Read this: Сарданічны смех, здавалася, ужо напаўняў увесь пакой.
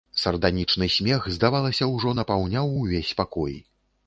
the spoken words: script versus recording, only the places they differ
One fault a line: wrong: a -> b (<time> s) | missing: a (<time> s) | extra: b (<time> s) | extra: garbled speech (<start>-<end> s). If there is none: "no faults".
no faults